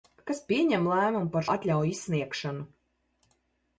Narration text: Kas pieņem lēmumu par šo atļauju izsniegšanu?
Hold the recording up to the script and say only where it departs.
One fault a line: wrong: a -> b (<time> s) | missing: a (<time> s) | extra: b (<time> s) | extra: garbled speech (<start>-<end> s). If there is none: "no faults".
missing: šo (1.4 s)